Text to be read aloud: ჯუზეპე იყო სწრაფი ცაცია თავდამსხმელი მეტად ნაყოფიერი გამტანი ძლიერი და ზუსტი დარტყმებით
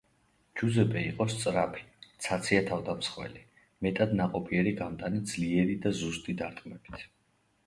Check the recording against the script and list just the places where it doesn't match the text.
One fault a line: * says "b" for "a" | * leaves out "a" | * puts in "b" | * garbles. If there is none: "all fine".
all fine